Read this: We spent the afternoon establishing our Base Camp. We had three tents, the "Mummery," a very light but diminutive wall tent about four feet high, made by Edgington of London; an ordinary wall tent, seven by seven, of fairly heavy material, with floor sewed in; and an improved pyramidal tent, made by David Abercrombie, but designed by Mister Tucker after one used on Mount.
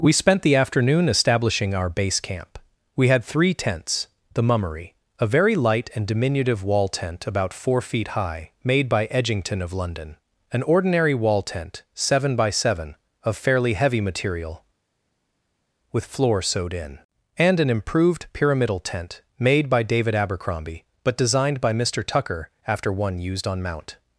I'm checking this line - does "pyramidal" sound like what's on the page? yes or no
yes